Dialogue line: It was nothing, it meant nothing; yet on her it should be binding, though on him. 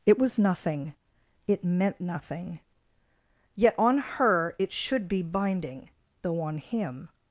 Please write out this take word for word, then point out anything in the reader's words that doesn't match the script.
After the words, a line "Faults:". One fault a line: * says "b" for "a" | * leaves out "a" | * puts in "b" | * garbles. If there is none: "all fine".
It was nothing, it meant nothing; yet on her it should be binding, though on him.
Faults:
all fine